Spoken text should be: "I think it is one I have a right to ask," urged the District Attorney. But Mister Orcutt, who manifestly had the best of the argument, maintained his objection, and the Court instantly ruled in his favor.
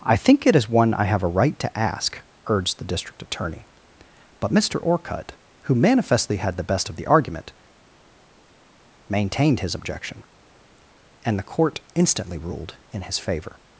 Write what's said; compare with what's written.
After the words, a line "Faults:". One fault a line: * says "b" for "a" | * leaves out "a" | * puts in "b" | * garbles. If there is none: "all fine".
"I think it is one I have a right to ask," urged the District Attorney. But Mister Orcutt, who manifestly had the best of the argument, maintained his objection, and the Court instantly ruled in his favor.
Faults:
all fine